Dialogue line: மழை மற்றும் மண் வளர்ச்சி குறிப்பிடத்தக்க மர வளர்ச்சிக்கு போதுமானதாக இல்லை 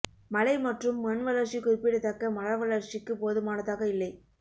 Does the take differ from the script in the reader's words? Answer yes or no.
no